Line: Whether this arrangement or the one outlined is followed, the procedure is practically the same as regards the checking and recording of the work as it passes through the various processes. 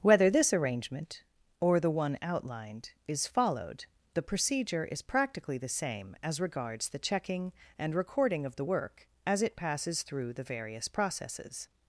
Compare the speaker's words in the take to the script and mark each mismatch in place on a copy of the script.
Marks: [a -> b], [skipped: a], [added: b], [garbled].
Whether this arrangement or the one outlined is followed, the procedure is practically the same as regards the checking and recording of the work as it passes through the various processes.